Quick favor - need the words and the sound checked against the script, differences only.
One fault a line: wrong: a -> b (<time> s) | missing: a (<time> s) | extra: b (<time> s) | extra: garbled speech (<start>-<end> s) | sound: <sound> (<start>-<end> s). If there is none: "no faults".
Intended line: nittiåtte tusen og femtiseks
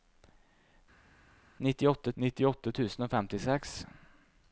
extra: nittiåtte (2.2 s)